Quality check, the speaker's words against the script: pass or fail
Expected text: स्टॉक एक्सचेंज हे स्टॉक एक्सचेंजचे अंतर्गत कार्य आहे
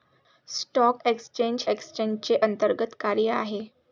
fail